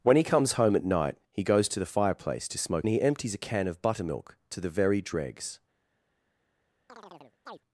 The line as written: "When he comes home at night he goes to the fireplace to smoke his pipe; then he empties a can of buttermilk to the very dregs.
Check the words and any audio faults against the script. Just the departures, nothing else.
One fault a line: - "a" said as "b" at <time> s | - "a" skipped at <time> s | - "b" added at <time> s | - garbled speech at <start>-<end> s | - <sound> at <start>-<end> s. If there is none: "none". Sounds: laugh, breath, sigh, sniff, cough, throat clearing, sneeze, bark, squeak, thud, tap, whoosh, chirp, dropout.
- "his pipe then" skipped at 2.9 s
- chirp at 6.9-7.6 s